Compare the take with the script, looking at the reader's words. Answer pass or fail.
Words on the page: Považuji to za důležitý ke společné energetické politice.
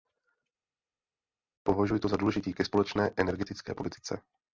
pass